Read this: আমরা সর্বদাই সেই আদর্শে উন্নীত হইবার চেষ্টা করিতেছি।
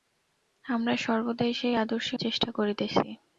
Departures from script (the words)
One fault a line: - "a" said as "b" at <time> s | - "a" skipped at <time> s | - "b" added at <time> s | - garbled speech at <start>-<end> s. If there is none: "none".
- "উন্নীত হইবার" skipped at 2.2 s